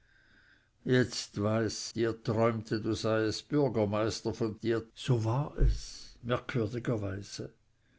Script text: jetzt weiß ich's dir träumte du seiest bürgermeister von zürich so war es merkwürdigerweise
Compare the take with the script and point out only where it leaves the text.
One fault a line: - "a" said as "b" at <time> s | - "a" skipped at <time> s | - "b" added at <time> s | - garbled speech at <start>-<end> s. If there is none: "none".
- "ich's" skipped at 1.9 s
- "zürich" said as "dir" at 4.6 s